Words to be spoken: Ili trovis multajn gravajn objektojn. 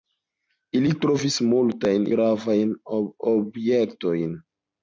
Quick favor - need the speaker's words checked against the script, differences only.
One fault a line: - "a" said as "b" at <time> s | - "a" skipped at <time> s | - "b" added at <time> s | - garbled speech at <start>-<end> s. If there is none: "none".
none